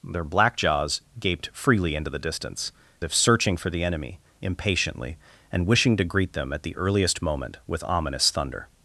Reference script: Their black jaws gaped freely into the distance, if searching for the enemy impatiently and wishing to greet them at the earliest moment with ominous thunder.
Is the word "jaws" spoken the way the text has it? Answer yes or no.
yes